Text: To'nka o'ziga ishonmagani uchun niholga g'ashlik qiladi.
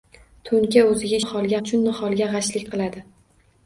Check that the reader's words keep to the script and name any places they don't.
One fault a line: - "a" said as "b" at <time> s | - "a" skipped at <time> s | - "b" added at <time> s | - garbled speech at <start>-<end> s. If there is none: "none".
- "ishonmagani" said as "niholga" at 1.2 s